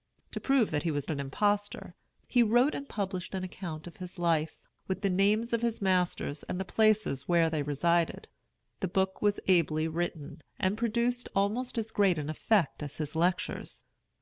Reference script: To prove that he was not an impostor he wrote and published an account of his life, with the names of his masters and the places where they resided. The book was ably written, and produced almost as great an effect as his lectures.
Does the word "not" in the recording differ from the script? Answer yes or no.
yes